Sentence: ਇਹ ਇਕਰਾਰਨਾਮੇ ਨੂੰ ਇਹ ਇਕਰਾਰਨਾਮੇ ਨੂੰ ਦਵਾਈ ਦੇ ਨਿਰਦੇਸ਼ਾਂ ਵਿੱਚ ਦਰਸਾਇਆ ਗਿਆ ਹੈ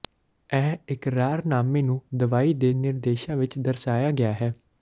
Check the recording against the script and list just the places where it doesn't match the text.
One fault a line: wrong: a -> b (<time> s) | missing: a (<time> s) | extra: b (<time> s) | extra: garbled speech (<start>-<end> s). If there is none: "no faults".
missing: ਇਹ ਇਕਰਾਰਨਾਮੇ ਨੂੰ (2.0 s)